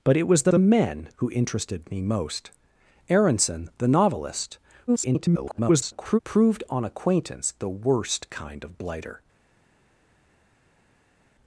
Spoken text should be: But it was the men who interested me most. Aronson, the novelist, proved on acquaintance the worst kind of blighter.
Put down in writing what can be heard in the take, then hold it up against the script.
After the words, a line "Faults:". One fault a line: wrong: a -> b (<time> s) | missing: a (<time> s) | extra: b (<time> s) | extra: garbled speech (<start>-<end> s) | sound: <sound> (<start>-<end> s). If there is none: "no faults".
But it was the the men who interested me most. Aronson, the novelist, [garbled] proved on acquaintance the worst kind of blighter.
Faults:
extra: the (0.5 s)
extra: garbled speech (4.9-6.2 s)